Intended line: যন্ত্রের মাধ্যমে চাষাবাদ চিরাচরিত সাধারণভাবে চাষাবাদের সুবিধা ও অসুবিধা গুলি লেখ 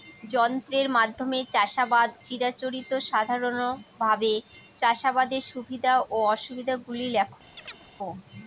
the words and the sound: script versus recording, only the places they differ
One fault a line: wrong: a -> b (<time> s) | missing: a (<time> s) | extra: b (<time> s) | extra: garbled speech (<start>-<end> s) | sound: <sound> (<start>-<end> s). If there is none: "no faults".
sound: chirp (7.6-7.9 s)